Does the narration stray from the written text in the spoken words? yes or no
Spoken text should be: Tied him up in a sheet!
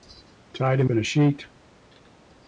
yes